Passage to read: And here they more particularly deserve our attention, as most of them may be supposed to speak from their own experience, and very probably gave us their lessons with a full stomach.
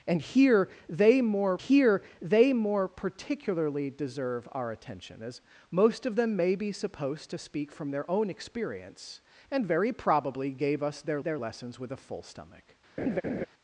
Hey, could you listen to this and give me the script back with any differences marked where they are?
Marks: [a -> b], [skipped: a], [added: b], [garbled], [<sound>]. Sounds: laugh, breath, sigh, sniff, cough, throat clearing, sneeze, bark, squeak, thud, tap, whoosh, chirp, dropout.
And here they more [added: here they more] particularly deserve our attention, as most of them may be supposed to speak from their own experience, and very probably gave us their [added: their] lessons with a full stomach. [laugh]